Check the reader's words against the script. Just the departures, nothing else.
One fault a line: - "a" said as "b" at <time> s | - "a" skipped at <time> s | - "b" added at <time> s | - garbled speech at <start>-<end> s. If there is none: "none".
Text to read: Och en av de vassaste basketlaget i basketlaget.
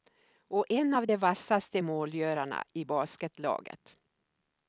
- "basketlaget" said as "målgörarna" at 1.8 s